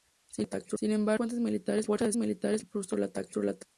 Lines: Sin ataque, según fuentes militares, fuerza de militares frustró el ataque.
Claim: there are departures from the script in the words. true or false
false